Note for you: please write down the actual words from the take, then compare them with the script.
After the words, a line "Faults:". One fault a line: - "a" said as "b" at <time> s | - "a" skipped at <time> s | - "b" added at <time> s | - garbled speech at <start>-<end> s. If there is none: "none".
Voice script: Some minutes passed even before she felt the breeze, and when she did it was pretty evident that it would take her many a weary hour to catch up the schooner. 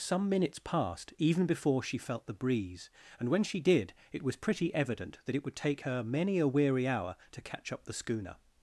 Some minutes passed even before she felt the breeze, and when she did it was pretty evident that it would take her many a weary hour to catch up the schooner.
Faults:
none